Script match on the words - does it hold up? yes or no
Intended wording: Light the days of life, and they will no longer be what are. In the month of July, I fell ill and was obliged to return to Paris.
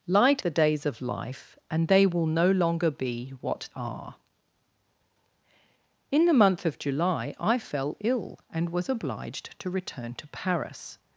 yes